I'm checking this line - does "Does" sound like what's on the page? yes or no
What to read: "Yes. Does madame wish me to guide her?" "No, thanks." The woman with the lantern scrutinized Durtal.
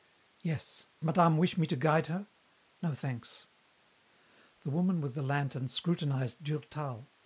no